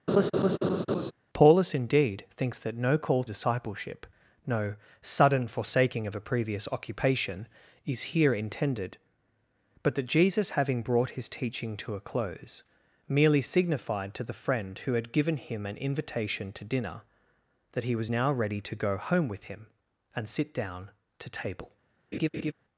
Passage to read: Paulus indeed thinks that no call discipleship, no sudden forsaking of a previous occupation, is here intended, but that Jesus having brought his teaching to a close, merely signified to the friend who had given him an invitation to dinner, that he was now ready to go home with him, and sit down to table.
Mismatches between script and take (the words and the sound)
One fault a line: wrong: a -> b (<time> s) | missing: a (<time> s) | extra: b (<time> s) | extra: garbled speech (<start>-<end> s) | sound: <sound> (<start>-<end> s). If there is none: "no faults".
sound: laugh (0.1-1.1 s)
sound: laugh (22.1-22.5 s)